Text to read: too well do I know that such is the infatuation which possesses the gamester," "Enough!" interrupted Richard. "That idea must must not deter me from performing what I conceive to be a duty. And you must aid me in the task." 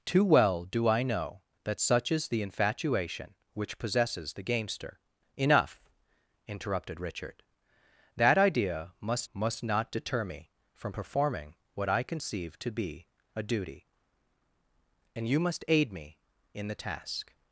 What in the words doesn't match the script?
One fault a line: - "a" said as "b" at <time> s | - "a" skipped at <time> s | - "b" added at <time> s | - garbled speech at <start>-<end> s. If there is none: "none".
none